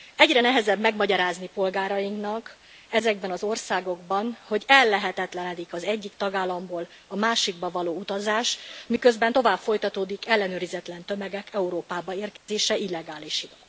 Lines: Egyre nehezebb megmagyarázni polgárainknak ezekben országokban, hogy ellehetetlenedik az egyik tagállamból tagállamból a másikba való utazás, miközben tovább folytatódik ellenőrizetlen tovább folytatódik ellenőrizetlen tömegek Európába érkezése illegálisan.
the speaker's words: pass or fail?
fail